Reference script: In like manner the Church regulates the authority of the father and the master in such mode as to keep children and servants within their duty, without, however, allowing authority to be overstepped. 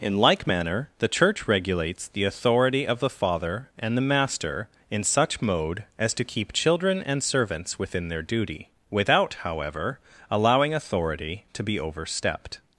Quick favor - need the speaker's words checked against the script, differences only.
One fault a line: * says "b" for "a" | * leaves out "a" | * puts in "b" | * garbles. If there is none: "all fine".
all fine